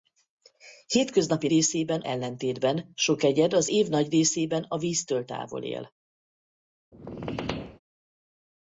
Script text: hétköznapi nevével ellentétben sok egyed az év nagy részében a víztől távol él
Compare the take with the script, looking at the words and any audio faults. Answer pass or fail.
fail